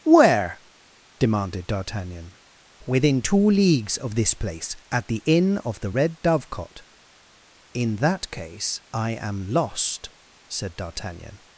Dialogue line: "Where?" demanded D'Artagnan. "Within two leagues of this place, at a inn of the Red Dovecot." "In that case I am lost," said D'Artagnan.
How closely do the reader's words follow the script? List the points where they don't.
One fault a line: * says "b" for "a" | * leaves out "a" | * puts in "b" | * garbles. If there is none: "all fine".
* says "the" for "a"